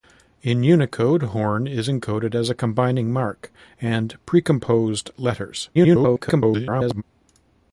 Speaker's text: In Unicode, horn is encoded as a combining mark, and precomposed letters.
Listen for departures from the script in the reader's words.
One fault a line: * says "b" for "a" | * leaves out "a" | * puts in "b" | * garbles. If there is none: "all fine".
* garbles